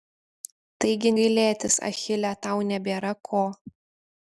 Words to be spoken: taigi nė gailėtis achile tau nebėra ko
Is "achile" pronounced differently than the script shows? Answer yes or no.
no